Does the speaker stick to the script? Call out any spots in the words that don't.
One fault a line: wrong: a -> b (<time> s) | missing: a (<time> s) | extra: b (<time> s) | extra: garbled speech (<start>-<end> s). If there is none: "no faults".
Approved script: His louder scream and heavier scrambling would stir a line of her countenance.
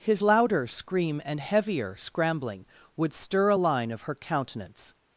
no faults